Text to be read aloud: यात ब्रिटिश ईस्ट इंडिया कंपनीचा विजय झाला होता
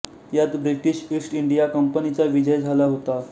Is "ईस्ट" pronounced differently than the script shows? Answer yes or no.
no